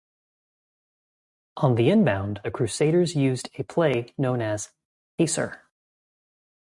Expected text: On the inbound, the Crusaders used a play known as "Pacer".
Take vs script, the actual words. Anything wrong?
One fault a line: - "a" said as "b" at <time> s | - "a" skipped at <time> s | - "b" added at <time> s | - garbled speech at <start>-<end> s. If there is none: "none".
none